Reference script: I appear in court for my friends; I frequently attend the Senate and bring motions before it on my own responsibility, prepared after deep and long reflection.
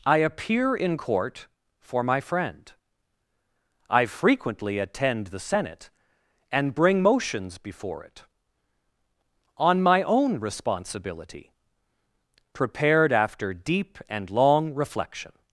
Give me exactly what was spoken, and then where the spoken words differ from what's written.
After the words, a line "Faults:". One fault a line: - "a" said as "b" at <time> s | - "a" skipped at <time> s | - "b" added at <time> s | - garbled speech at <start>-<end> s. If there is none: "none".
I appear in court for my friend; I frequently attend the Senate and bring motions before it on my own responsibility, prepared after deep and long reflection.
Faults:
- "friends" said as "friend" at 2.2 s